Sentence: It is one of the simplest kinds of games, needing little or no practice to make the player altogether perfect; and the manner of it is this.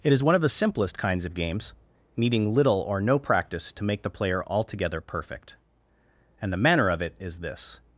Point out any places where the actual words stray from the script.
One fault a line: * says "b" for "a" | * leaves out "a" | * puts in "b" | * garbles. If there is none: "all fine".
all fine